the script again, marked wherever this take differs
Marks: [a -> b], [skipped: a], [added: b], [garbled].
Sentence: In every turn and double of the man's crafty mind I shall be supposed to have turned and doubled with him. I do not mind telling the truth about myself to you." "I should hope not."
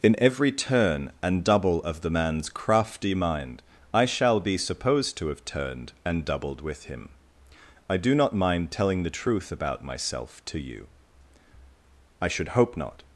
In every turn and double of the man's crafty mind I shall be supposed to have turned and doubled with him. I do not mind telling the truth about myself to you." "I should hope not."